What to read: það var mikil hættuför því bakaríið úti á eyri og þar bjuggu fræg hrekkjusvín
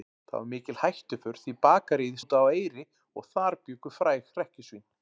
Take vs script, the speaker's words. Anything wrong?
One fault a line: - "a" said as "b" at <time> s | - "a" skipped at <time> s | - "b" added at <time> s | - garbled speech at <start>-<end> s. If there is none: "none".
none